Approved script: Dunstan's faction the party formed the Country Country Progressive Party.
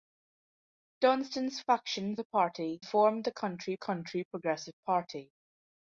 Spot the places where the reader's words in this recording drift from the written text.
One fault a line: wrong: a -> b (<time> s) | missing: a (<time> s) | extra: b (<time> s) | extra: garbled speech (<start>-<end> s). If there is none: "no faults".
no faults